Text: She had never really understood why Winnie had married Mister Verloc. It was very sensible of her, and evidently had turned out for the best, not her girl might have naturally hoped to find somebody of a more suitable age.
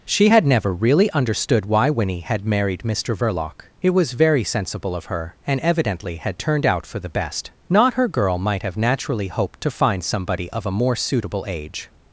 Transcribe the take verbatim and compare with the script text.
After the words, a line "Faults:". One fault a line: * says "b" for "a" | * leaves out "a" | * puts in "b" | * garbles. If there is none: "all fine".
She had never really understood why Winnie had married Mister Verloc. It was very sensible of her, and evidently had turned out for the best, not her girl might have naturally hoped to find somebody of a more suitable age.
Faults:
all fine